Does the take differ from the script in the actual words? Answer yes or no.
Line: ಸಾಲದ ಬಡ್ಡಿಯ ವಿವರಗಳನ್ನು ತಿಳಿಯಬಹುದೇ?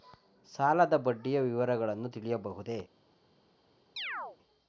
no